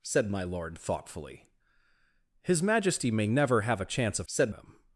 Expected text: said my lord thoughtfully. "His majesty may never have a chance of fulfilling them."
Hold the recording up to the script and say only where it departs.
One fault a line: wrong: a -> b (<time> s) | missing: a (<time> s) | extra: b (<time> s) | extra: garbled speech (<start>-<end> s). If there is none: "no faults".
wrong: fulfilling -> said (4.2 s)